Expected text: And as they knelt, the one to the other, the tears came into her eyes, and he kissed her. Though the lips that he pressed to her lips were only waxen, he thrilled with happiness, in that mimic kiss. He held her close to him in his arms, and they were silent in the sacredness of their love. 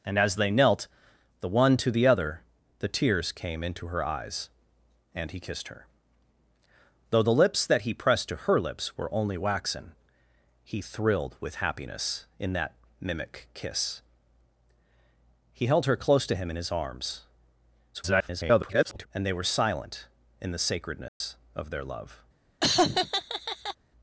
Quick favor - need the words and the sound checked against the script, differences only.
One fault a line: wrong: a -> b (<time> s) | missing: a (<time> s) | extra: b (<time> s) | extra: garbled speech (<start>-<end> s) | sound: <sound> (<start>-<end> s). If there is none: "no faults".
extra: garbled speech (17.9-19.1 s)
sound: dropout (21.1-21.2 s)
sound: laugh (22.6-23.8 s)